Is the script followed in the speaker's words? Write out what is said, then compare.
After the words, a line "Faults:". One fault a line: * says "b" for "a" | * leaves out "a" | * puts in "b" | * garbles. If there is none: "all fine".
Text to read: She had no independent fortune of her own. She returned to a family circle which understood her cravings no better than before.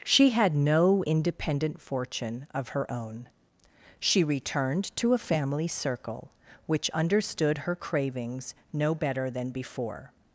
She had no independent fortune of her own. She returned to a family circle which understood her cravings no better than before.
Faults:
all fine